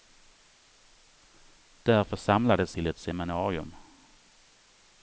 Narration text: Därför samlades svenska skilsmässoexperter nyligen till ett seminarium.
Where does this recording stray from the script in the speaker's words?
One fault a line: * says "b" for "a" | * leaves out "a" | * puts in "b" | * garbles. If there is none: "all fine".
* leaves out "svenska skilsmässoexperter nyligen"